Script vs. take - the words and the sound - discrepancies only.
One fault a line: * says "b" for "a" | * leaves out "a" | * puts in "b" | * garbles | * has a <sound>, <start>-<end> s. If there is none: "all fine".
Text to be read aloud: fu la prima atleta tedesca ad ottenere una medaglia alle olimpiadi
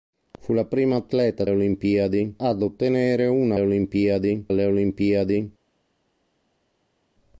* says "olimpiadi" for "tedesca"
* says "olimpiadi" for "medaglia"